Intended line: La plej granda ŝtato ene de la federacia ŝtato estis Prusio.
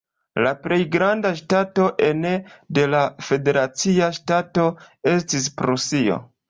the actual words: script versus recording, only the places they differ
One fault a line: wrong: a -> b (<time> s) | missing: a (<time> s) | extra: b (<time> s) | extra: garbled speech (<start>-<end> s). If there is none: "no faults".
no faults